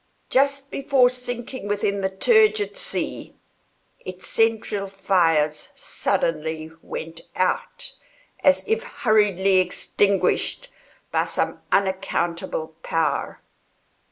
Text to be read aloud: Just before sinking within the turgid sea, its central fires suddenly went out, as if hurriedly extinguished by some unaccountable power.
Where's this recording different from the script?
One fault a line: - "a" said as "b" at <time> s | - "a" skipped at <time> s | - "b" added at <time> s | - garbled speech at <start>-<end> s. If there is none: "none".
none